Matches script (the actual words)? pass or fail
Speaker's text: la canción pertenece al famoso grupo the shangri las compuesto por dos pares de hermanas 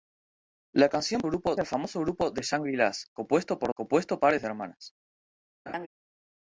fail